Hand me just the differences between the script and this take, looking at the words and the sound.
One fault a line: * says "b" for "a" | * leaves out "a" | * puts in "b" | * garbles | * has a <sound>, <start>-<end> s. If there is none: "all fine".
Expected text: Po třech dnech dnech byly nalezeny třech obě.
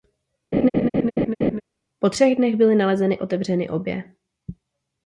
* has a laugh, 0.5-1.6 s
* leaves out "dnech"
* says "otevřeny" for "třech"